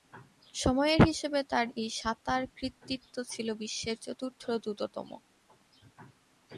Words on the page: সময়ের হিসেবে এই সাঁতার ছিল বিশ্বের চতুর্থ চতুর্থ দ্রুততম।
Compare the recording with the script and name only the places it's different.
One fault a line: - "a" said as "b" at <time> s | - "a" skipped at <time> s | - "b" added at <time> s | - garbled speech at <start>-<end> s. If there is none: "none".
- "তার" added at 1.5 s
- "কৃতিত্ব" added at 2.6 s
- "চতুর্থ" skipped at 4.4 s